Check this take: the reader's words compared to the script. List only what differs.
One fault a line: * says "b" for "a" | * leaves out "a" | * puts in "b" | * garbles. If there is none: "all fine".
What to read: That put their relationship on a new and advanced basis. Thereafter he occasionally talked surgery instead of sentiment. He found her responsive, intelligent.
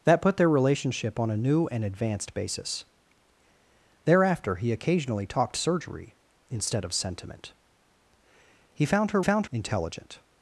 * says "found" for "responsive"